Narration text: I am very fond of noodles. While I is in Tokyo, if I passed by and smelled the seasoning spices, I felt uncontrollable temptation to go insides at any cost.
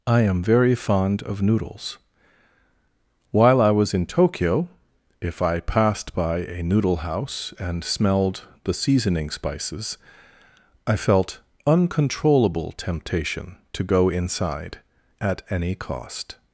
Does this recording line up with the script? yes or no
no